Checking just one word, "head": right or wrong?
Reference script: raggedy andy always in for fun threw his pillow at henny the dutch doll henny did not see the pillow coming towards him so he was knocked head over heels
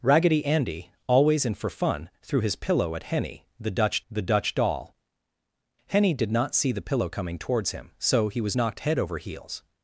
right